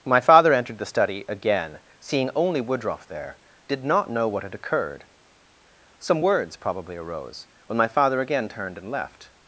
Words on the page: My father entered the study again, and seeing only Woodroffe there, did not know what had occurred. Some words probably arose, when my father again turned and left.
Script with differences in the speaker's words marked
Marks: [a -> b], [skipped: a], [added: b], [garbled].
My father entered the study again, [skipped: and] seeing only Woodroffe there, did not know what had occurred. Some words probably arose, when my father again turned and left.